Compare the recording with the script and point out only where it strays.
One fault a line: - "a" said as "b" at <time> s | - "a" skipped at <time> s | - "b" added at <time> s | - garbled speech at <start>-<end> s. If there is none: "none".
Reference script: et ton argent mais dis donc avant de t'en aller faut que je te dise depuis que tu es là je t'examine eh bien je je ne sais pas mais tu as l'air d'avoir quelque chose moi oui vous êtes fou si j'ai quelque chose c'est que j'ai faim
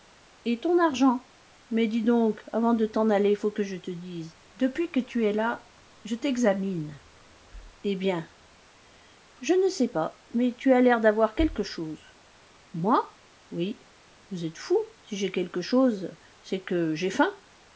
- "je" skipped at 9.5 s